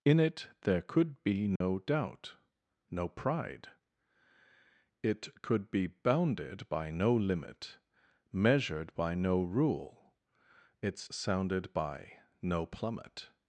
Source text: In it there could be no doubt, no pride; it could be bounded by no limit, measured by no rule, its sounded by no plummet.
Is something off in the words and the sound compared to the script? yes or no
yes